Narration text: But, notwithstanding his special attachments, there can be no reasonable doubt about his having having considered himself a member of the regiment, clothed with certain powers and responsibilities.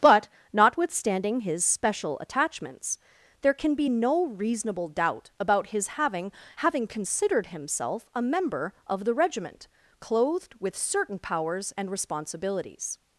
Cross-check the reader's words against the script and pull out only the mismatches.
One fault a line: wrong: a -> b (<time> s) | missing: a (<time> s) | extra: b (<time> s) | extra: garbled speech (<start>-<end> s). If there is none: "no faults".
no faults